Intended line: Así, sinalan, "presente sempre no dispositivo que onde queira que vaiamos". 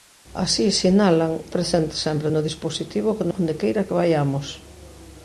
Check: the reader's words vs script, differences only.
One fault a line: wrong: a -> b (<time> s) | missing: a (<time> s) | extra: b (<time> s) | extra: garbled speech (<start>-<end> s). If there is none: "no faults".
no faults